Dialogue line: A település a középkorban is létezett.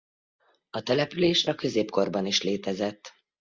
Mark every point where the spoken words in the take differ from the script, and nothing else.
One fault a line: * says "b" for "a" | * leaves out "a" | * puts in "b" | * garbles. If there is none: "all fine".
all fine